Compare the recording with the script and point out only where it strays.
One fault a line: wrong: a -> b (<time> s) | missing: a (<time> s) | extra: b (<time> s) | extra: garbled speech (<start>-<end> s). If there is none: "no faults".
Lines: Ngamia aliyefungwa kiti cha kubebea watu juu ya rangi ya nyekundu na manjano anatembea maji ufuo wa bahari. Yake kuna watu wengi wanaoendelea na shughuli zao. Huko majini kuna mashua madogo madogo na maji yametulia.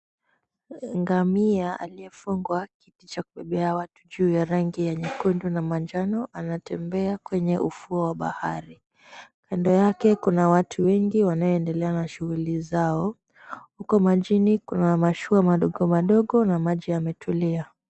wrong: maji -> kwenye (7.2 s)
extra: Kando (9.5 s)